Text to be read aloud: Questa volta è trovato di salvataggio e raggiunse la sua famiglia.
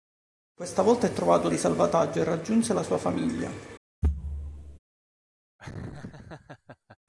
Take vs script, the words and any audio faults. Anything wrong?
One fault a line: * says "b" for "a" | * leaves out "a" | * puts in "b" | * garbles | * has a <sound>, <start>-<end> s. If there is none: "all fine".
* has a thud, 4.0-4.8 s
* has a laugh, 5.6-7.0 s